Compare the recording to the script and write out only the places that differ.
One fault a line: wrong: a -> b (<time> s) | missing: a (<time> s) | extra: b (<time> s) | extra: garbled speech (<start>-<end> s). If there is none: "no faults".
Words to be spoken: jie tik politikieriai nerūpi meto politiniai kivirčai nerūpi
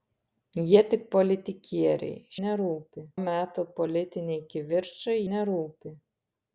no faults